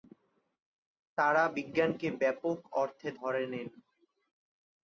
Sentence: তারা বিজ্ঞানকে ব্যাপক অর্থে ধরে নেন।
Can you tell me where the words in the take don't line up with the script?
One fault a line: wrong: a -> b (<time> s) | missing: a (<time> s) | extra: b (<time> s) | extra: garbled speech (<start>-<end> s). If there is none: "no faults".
no faults